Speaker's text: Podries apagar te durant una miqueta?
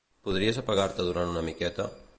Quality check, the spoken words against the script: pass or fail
pass